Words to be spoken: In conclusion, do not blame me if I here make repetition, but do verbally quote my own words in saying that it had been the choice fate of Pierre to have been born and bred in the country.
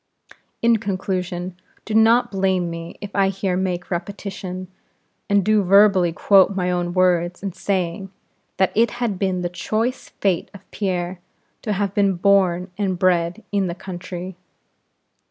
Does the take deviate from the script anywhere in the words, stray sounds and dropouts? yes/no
yes